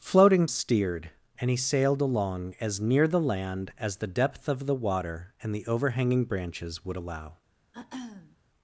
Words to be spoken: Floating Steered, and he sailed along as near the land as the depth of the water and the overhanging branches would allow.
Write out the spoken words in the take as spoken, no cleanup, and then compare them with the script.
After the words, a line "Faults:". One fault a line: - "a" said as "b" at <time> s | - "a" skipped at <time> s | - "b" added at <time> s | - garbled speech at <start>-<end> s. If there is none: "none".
Floating Steered, and he sailed along as near the land as the depth of the water and the overhanging branches would allow.
Faults:
none